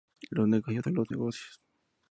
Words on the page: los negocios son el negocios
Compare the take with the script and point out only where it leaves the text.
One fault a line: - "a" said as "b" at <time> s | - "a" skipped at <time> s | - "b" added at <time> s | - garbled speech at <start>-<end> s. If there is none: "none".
- "el" said as "los" at 0.9 s